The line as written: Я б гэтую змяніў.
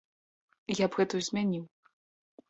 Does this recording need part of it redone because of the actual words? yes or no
no